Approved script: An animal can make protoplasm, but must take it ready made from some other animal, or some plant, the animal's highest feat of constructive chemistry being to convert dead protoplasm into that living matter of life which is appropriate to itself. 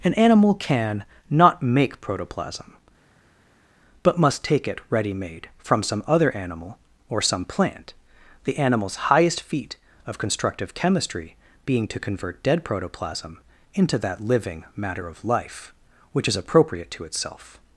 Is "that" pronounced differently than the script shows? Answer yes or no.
no